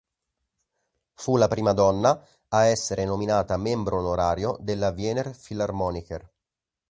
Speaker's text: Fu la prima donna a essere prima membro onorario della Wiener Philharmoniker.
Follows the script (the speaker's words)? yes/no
no